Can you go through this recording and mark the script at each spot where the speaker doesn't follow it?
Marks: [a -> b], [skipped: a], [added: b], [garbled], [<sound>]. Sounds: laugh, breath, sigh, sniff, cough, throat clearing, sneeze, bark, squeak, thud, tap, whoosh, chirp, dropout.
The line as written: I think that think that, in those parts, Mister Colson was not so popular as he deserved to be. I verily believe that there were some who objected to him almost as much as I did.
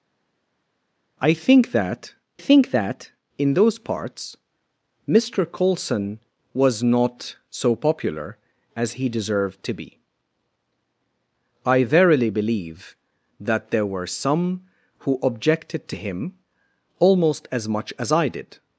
I think that think that, in those parts, Mister Colson was not so popular as he deserved to be. I verily believe that there were some who objected to him almost as much as I did.